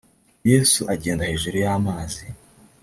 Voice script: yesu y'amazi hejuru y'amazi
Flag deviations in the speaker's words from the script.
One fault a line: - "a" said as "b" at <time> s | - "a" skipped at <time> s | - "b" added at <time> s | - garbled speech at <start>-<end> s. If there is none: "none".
- "y'amazi" said as "agenda" at 0.9 s